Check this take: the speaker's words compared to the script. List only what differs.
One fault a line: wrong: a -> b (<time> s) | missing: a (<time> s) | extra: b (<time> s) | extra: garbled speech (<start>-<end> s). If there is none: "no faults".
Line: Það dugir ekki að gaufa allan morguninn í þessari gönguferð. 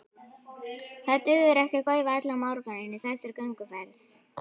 no faults